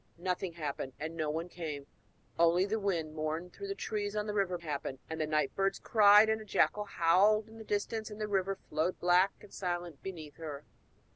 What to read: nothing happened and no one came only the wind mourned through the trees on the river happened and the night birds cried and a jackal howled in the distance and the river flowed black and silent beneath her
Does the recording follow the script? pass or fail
pass